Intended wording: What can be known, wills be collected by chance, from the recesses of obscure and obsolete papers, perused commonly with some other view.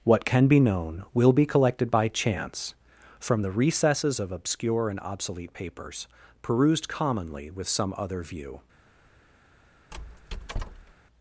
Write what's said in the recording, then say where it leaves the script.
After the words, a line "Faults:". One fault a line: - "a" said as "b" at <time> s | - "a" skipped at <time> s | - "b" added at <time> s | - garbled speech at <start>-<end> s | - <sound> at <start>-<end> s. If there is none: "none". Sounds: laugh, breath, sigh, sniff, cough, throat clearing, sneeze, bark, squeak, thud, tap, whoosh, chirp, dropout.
What can be known, will be collected by chance, from the recesses of obscure and obsolete papers, perused commonly with some other view.
Faults:
- "wills" said as "will" at 1.1 s
- squeak at 9.9-10.9 s